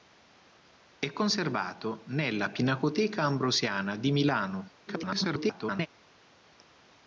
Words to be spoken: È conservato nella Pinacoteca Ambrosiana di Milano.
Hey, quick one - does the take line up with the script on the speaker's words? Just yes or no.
no